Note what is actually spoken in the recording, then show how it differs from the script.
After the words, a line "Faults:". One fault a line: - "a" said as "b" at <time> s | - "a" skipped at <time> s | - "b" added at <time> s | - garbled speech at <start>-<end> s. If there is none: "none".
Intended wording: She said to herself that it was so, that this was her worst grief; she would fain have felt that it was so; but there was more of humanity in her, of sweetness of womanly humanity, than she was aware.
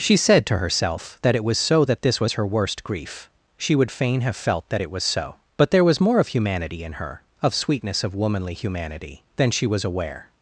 She said to herself that it was so, that this was her worst grief; she would fain have felt that it was so; but there was more of humanity in her, of sweetness of womanly humanity, than she was aware.
Faults:
none